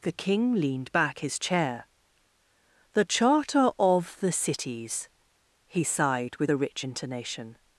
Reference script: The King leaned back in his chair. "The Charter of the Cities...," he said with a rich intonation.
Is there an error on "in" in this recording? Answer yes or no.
yes